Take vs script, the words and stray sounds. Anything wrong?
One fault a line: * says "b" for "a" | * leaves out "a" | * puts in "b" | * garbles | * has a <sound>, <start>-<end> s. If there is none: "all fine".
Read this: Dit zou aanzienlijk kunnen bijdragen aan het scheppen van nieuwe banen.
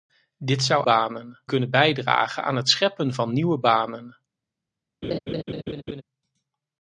* says "banen" for "aanzienlijk"
* has a laugh, 5.0-6.0 s